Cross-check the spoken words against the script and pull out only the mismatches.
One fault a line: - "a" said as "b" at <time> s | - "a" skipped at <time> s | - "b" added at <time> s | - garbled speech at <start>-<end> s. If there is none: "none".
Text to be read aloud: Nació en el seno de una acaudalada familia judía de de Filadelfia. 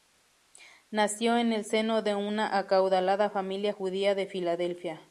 - "de" skipped at 4.3 s